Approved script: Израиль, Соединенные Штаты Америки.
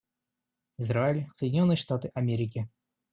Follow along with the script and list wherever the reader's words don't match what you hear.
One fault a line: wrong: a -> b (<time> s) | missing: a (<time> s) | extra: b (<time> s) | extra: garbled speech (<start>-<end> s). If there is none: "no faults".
no faults